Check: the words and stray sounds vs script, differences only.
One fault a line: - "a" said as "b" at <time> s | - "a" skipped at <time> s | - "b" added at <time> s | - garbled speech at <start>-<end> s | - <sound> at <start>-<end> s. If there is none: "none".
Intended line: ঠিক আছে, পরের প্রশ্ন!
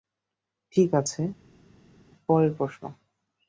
none